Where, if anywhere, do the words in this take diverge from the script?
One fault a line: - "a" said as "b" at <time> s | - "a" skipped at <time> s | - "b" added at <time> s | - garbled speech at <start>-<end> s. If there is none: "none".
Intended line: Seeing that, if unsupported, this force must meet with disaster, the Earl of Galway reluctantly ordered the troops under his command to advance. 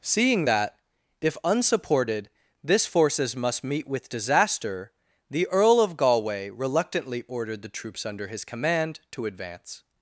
- "force" said as "forces" at 2.9 s